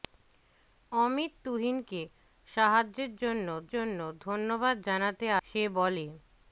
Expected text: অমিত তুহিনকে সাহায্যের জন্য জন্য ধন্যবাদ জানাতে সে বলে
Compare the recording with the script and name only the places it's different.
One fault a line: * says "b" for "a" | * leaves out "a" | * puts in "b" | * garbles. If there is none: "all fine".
all fine